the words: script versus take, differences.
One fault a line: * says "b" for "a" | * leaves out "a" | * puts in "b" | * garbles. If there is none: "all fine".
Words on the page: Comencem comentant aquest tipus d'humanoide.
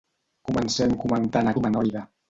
* leaves out "aquest tipus"